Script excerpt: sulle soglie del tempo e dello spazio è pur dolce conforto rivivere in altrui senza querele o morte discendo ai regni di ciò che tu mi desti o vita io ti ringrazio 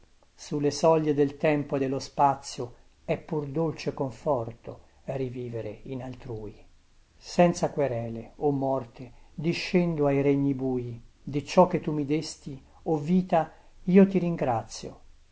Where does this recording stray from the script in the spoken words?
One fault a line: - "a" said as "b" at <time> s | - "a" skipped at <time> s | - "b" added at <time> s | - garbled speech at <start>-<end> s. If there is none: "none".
- "bui" added at 10.5 s